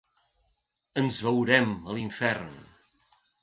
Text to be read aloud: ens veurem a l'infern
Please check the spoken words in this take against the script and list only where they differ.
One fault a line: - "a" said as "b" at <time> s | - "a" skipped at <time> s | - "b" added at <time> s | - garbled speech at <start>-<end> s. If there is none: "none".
none